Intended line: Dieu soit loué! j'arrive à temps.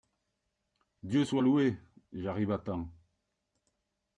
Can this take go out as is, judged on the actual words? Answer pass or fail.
pass